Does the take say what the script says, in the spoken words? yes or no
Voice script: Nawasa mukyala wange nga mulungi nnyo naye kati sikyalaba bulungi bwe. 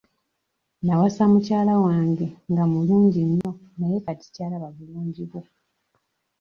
yes